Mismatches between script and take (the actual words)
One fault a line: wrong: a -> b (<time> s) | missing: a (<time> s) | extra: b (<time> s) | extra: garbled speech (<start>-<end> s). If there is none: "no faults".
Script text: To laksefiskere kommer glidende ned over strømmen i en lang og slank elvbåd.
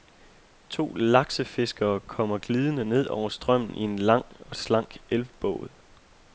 no faults